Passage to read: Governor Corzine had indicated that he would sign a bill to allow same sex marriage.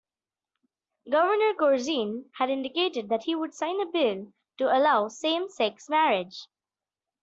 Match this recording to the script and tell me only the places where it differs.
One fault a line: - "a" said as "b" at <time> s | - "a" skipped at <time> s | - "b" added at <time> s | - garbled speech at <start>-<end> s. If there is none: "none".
none